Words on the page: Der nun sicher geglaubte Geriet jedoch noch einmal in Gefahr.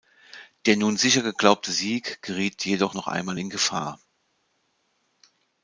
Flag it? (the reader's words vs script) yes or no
yes